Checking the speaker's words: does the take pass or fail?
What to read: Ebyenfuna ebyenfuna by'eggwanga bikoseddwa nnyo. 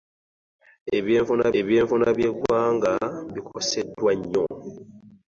pass